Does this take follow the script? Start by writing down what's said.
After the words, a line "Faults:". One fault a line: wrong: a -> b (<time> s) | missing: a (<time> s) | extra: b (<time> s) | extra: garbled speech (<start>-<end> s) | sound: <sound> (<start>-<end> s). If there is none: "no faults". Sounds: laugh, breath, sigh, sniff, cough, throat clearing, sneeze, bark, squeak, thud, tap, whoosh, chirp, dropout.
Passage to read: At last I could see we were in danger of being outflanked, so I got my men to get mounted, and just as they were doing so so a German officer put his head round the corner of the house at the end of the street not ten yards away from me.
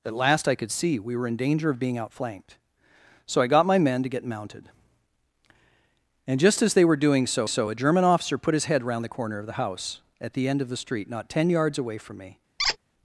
At last I could see we were in danger of being outflanked, so I got my men to get mounted, and just as they were doing so so a German officer put his head round the corner of the house at the end of the street not ten yards away from me.
Faults:
sound: squeak (12.6-12.8 s)